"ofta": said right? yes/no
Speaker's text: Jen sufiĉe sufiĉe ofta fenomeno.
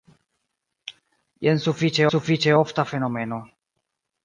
yes